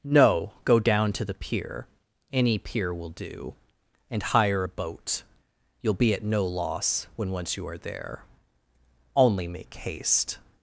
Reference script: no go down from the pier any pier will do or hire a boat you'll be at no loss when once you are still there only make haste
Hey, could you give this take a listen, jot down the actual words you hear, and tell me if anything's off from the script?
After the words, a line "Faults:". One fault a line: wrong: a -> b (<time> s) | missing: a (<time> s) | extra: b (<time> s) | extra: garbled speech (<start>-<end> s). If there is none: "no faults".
no go down to the pier any pier will do and hire a boat you'll be at no loss when once you are there only make haste
Faults:
wrong: from -> to (1.1 s)
wrong: or -> and (4.1 s)
missing: still (7.8 s)